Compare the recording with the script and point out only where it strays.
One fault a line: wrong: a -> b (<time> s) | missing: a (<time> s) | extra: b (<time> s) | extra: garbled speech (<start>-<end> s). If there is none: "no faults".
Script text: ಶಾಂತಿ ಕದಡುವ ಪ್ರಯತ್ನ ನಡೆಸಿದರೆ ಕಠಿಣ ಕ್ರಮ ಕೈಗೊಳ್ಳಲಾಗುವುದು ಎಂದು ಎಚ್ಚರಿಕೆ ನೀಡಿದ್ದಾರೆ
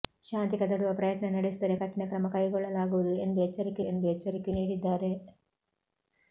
extra: ಎಂದು ಎಚ್ಚರಿಕೆ (3.9 s)